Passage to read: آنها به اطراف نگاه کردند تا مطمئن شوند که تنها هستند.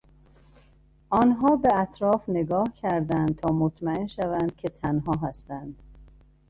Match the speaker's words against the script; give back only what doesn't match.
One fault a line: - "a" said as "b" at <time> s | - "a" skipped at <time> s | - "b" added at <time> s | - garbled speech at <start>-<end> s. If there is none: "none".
none